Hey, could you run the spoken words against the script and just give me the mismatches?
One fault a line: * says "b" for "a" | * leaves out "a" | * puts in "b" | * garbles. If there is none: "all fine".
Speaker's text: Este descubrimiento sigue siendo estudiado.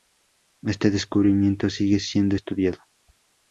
all fine